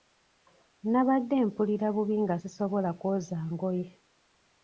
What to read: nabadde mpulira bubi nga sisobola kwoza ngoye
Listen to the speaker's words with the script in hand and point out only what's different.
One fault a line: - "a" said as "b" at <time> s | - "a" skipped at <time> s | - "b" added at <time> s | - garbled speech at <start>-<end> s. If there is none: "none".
none